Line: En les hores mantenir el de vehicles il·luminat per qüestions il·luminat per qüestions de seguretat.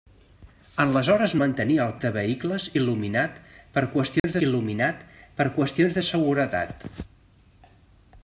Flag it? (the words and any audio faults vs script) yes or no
yes